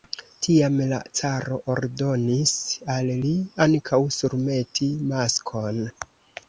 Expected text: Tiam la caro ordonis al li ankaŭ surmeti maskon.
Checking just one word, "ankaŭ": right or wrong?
right